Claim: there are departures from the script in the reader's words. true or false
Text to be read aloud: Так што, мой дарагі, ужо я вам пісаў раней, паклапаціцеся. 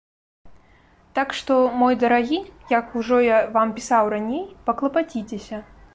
true